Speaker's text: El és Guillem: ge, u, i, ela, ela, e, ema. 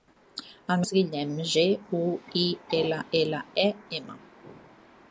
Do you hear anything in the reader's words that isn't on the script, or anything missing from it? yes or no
no